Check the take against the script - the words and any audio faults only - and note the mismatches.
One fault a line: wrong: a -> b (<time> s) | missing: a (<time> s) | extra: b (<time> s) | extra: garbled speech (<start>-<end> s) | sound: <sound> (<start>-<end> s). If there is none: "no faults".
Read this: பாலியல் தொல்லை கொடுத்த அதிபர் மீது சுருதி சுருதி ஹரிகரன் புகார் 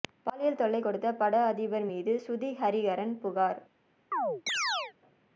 extra: பட (1.1 s)
missing: சுருதி (2.5 s)
sound: chirp (4.1-4.9 s)